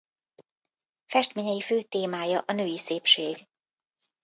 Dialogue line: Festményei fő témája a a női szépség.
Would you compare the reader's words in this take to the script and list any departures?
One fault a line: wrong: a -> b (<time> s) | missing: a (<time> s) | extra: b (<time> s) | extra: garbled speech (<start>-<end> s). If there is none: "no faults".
missing: a (2.5 s)